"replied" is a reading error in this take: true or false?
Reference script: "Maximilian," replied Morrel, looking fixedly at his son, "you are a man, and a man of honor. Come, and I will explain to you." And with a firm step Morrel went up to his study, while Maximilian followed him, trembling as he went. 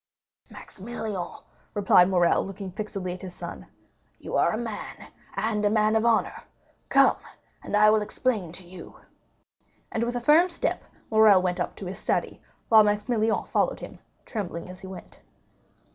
false